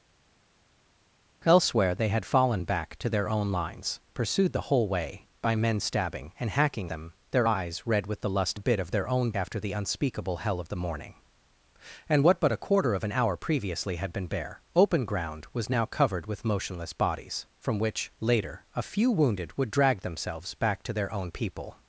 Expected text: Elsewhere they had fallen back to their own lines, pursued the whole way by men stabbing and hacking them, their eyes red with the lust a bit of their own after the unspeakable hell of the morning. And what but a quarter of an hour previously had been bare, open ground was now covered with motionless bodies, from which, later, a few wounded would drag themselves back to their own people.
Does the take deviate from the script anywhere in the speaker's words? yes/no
no